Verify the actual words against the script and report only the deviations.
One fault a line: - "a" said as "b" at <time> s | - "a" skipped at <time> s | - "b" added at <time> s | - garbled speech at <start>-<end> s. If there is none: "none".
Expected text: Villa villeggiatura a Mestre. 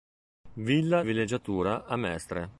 none